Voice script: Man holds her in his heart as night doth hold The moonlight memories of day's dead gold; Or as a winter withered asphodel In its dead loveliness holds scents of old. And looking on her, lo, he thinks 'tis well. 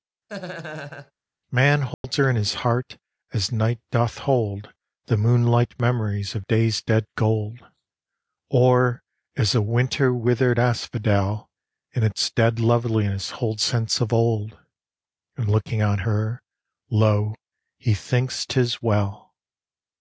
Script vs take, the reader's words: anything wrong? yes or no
no